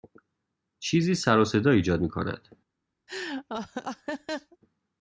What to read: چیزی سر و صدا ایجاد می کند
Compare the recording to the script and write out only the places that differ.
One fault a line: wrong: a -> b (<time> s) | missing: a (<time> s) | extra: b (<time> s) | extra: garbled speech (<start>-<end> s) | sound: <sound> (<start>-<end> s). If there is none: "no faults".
sound: laugh (3.1-4.6 s)